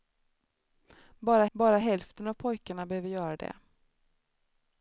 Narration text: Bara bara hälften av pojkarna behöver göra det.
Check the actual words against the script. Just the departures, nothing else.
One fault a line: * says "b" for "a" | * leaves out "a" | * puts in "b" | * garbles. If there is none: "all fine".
all fine